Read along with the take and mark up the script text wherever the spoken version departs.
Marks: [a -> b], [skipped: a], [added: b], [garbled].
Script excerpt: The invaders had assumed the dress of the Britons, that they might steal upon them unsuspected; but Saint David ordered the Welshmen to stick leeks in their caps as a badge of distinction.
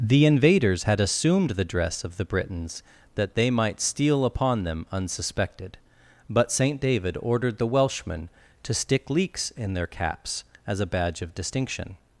The invaders had assumed the dress of the Britons, that they might steal upon them unsuspected; but Saint David ordered the Welshmen to stick leeks in their caps as a badge of distinction.